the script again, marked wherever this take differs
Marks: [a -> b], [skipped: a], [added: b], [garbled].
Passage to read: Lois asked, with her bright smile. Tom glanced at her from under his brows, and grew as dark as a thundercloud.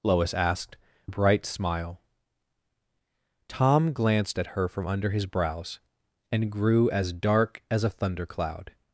Lois asked, [skipped: with her] bright smile. Tom glanced at her from under his brows, and grew as dark as a thundercloud.